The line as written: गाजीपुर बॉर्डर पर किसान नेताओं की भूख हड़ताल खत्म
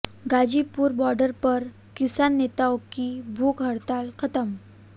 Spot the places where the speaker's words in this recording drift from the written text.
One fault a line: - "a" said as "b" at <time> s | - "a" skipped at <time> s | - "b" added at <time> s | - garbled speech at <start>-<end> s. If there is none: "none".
none